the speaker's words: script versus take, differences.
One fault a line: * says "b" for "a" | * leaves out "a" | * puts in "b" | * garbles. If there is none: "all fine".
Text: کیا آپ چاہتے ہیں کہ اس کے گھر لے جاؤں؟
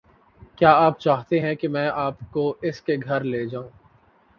* puts in "میں آپ کو"